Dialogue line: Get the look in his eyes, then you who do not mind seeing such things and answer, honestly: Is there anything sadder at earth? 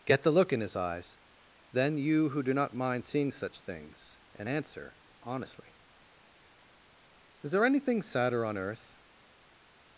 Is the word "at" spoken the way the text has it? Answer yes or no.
no